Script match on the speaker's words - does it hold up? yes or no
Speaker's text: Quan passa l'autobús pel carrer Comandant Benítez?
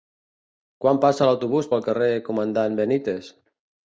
yes